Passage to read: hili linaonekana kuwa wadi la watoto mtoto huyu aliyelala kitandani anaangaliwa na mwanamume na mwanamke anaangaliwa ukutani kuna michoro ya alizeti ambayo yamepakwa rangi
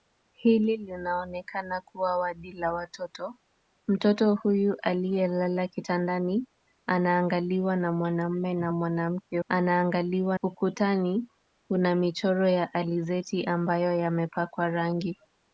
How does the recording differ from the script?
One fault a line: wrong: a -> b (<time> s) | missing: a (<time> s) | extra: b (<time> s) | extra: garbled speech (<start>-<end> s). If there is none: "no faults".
no faults